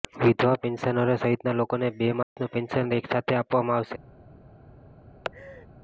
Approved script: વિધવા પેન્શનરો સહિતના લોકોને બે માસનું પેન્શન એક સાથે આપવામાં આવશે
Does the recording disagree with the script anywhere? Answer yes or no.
no